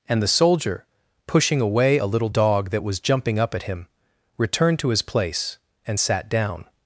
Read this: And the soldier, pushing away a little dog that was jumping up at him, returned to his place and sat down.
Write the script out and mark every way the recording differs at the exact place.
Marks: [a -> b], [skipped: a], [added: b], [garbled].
And the soldier, pushing away a little dog that was jumping up at him, returned to his place and sat down.